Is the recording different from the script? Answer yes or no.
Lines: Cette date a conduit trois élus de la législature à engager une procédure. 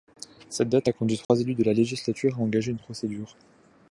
no